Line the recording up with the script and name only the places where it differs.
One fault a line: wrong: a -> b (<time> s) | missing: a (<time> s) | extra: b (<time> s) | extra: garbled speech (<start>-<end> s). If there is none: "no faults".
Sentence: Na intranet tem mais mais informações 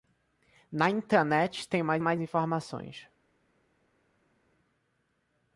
no faults